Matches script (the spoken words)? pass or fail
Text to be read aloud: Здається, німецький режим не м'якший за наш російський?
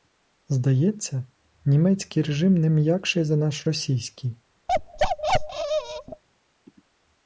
pass